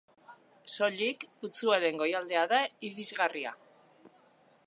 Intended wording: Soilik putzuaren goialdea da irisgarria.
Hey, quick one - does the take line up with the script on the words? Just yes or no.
yes